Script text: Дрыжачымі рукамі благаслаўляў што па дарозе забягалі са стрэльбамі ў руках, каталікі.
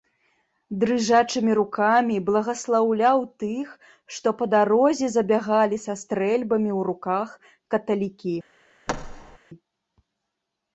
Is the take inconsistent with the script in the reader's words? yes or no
yes